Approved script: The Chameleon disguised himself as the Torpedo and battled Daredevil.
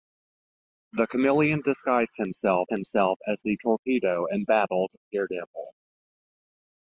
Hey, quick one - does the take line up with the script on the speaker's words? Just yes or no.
no